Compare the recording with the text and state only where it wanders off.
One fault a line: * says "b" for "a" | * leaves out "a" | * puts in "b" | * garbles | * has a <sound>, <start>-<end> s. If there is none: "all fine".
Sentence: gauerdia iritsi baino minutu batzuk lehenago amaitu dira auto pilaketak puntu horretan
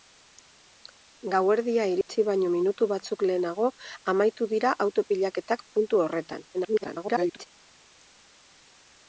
* has a dropout, 2.0-2.1 s
* garbles